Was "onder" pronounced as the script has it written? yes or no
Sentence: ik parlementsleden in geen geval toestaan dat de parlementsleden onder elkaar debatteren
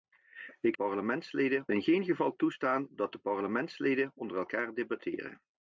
yes